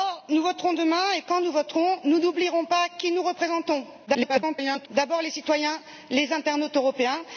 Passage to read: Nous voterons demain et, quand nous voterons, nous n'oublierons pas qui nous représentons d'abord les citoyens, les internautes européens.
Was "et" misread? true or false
false